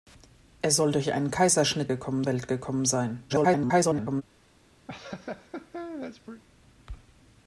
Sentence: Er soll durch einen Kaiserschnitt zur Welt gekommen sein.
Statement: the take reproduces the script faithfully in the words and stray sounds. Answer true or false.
false